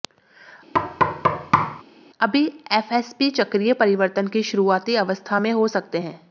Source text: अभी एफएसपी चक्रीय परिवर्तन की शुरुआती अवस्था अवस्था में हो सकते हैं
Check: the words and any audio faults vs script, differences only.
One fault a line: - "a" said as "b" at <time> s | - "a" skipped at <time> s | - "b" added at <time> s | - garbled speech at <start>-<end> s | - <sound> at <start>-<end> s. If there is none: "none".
- thud at 0.7-1.8 s
- "अवस्था" skipped at 5.4 s